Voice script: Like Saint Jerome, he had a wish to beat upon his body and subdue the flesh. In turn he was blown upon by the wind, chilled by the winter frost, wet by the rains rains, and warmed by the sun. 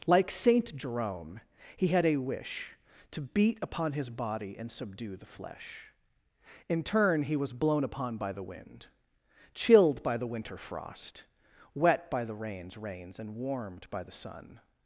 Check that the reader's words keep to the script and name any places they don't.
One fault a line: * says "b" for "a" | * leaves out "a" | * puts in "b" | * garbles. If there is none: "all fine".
all fine